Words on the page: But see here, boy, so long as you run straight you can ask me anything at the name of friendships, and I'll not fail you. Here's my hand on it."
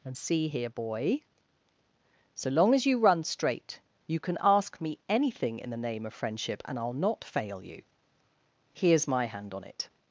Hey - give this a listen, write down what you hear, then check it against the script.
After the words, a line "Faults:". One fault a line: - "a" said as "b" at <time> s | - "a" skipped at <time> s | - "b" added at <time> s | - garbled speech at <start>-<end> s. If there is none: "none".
And see here, boy, so long as you run straight you can ask me anything in the name of friendship, and I'll not fail you. Here's my hand on it."
Faults:
- "But" said as "And" at 0.0 s
- "at" said as "in" at 5.6 s
- "friendships" said as "friendship" at 6.1 s